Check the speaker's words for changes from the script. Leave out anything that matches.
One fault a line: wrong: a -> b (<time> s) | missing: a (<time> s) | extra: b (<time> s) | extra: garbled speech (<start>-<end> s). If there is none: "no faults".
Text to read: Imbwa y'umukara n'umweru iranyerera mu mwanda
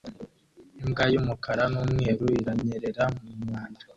no faults